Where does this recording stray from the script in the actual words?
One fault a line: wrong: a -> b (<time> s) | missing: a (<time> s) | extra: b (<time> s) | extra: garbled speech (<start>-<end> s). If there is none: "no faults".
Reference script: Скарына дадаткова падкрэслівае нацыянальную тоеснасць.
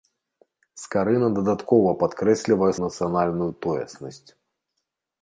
no faults